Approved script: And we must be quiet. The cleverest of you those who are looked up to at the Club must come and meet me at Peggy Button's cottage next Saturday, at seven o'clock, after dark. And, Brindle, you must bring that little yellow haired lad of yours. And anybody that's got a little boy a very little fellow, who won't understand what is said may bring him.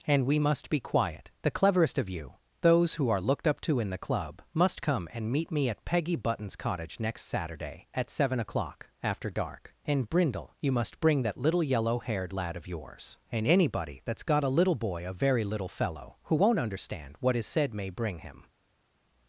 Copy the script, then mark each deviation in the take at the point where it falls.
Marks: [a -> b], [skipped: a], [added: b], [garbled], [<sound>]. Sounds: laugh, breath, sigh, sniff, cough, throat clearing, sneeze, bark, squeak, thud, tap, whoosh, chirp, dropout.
And we must be quiet. The cleverest of you those who are looked up to [at -> in] the Club must come and meet me at Peggy Button's cottage next Saturday, at seven o'clock, after dark. And, Brindle, you must bring that little yellow haired lad of yours. And anybody that's got a little boy a very little fellow, who won't understand what is said may bring him.